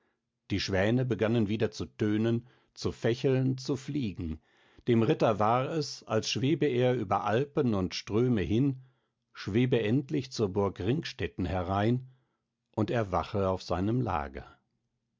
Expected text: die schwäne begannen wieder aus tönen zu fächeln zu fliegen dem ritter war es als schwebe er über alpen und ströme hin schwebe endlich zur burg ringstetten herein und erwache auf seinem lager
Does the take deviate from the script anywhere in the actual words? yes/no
yes